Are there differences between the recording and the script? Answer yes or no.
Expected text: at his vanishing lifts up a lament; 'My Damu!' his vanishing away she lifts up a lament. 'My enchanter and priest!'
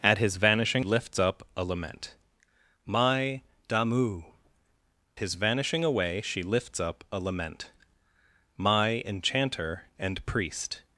no